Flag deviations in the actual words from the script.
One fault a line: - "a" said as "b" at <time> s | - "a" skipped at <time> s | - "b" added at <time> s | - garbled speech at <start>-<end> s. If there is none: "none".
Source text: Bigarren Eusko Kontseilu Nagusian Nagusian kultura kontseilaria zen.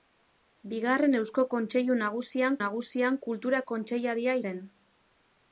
none